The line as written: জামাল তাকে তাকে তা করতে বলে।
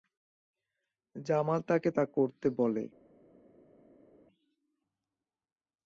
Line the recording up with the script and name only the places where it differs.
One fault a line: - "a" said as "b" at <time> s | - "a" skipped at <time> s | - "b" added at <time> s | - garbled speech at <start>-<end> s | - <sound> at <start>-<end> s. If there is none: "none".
- "তাকে" skipped at 1.9 s